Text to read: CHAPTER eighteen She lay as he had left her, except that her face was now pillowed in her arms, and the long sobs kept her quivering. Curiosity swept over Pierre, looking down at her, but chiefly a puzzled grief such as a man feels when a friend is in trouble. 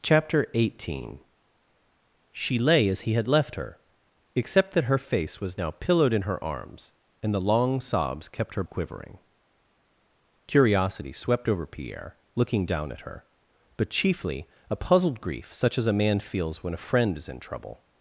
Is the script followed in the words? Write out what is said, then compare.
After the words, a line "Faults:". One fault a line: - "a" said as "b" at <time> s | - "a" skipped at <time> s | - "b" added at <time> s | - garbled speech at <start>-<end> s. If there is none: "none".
CHAPTER eighteen She lay as he had left her, except that her face was now pillowed in her arms, and the long sobs kept her quivering. Curiosity swept over Pierre, looking down at her, but chiefly a puzzled grief such as a man feels when a friend is in trouble.
Faults:
none